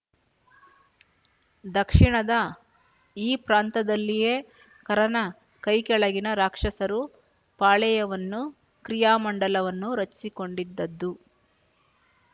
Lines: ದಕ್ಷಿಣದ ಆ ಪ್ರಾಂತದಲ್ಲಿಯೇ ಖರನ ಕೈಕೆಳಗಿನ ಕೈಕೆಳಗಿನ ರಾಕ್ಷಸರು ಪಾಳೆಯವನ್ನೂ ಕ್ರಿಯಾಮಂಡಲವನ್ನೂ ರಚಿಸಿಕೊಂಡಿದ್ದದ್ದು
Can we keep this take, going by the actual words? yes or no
no